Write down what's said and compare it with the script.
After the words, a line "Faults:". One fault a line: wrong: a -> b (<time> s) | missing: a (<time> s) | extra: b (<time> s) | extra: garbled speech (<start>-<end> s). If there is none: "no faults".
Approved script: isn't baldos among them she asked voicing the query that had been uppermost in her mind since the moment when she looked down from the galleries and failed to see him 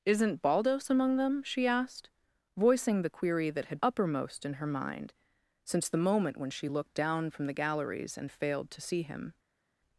isn't baldos among them she asked voicing the query that had uppermost in her mind since the moment when she looked down from the galleries and failed to see him
Faults:
missing: been (3.8 s)